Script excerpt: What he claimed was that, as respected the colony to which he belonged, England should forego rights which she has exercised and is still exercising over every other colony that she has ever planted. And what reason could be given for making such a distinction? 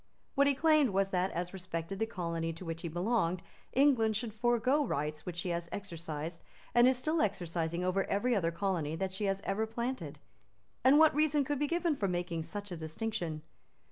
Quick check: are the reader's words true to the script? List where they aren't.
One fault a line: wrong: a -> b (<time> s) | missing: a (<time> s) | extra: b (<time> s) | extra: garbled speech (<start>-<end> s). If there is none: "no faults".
no faults